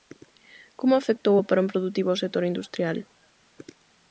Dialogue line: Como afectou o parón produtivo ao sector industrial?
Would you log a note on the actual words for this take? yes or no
no